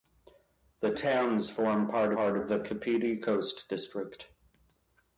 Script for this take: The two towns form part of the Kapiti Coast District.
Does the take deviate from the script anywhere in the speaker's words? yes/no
yes